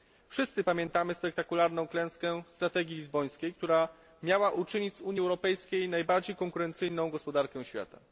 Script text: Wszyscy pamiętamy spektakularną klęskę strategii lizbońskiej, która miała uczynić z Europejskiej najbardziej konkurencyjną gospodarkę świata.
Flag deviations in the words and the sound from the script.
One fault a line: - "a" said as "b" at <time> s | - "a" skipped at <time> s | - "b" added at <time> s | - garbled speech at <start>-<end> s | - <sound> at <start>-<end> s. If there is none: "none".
- "Unii" added at 5.0 s